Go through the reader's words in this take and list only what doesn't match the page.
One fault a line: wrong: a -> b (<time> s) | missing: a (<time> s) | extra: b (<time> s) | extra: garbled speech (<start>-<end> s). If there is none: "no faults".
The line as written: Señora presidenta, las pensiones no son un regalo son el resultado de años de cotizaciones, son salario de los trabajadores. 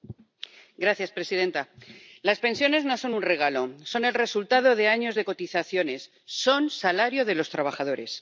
no faults